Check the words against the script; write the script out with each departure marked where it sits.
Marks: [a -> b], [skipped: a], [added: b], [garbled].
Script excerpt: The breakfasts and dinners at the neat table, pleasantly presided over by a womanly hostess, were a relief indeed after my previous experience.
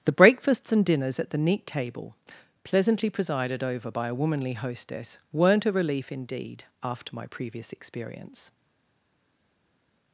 The breakfasts and dinners at the neat table, pleasantly presided over by a womanly hostess, [were -> weren't] a relief indeed after my previous experience.